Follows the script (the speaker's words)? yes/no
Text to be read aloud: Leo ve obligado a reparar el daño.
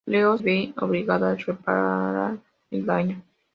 yes